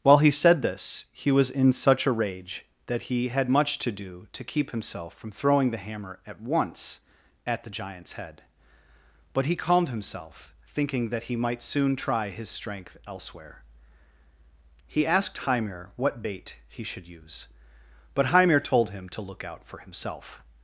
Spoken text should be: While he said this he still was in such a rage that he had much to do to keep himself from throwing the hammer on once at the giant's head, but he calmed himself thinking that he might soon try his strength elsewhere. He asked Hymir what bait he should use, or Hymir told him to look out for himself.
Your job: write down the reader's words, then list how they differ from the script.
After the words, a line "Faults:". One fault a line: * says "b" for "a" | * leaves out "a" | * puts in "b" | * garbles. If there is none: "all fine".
While he said this he was in such a rage that he had much to do to keep himself from throwing the hammer at once at the giant's head, but he calmed himself thinking that he might soon try his strength elsewhere. He asked Hymir what bait he should use, but Hymir told him to look out for himself.
Faults:
* leaves out "still"
* says "at" for "on"
* says "but" for "or"